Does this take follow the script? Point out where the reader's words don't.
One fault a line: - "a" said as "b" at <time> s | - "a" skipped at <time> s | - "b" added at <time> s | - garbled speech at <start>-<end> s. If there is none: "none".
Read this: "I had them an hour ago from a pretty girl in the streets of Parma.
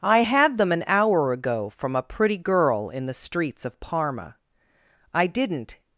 - "I didn't" added at 5.1 s